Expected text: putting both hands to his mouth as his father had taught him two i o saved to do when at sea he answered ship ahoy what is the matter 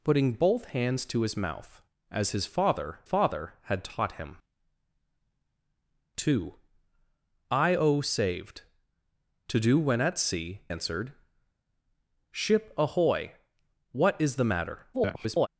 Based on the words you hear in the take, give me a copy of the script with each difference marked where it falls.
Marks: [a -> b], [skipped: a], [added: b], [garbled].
putting both hands to his mouth as his father [added: father] had taught him two i o saved to do when at sea [skipped: he] answered ship ahoy what is the matter [garbled]